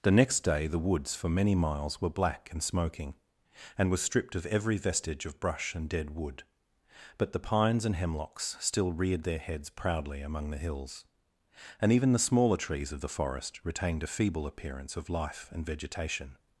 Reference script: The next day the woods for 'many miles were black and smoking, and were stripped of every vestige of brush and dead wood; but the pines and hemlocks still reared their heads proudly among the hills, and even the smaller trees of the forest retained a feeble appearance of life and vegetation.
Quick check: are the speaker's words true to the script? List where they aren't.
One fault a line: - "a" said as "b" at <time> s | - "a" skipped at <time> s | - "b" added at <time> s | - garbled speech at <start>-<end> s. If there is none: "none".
none